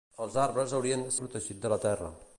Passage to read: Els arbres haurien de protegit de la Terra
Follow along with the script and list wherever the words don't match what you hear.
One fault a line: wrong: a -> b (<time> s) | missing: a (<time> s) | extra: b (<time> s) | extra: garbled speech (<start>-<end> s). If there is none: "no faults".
no faults